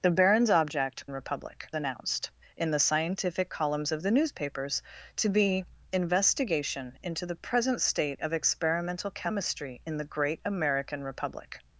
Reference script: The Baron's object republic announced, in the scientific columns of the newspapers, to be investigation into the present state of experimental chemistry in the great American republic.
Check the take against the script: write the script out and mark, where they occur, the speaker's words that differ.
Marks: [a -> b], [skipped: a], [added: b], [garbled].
The Baron's object republic announced, in the scientific columns of the newspapers, to be investigation into the present state of experimental chemistry in the great American republic.